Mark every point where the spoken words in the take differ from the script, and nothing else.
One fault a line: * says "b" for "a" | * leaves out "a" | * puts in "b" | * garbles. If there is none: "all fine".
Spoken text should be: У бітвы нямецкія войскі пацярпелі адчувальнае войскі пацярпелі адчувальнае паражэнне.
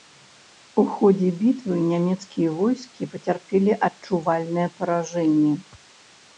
* puts in "ходзе"
* leaves out "войскі пацярпелі адчувальнае"